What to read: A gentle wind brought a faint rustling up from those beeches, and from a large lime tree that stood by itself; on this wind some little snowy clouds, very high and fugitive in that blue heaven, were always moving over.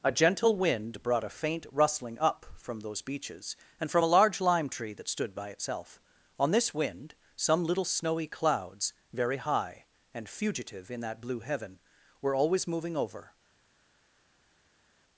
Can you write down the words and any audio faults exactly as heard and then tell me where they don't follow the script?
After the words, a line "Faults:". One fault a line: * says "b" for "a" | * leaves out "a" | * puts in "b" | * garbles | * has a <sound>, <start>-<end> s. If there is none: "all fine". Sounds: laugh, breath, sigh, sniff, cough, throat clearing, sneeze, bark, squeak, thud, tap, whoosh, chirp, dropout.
A gentle wind brought a faint rustling up from those beeches, and from a large lime tree that stood by itself; on this wind some little snowy clouds, very high and fugitive in that blue heaven, were always moving over.
Faults:
all fine